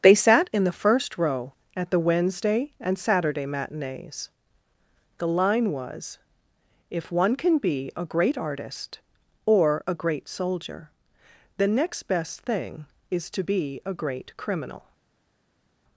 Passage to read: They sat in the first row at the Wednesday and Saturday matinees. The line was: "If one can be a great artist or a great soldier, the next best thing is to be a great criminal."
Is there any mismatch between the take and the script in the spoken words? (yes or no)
no